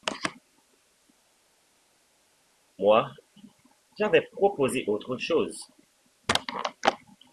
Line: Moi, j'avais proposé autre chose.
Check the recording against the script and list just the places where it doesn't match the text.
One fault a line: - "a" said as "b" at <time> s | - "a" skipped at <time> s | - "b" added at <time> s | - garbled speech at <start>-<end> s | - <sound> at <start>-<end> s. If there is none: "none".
none